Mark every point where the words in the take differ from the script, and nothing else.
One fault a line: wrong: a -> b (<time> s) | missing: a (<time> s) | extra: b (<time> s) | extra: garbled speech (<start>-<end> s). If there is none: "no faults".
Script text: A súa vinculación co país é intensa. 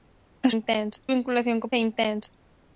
wrong: súa -> intensa (0.6 s)
missing: país (1.7 s)